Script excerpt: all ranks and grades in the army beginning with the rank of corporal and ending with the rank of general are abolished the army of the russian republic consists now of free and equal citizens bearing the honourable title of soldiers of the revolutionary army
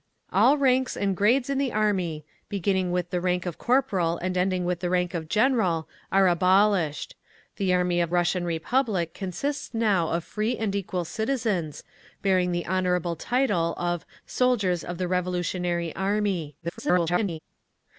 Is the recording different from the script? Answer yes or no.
yes